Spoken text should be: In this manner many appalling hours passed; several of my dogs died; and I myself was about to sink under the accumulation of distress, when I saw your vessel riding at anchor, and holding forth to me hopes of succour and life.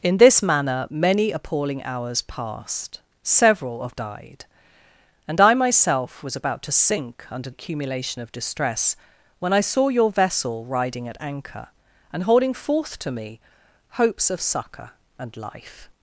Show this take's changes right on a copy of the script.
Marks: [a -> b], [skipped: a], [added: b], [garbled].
In this manner many appalling hours passed; several of [skipped: my dogs] died; and I myself was about to sink under [skipped: the] accumulation of distress, when I saw your vessel riding at anchor, and holding forth to me hopes of succour and life.